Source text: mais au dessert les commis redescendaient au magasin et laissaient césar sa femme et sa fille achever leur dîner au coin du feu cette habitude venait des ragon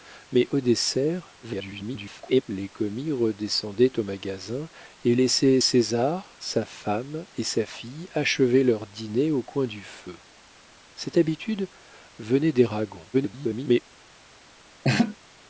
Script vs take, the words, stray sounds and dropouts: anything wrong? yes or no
yes